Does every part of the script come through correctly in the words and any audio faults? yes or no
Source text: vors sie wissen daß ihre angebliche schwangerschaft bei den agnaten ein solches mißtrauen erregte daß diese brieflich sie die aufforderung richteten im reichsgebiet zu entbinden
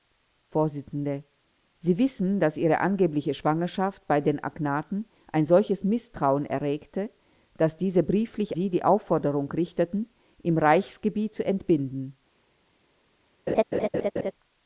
no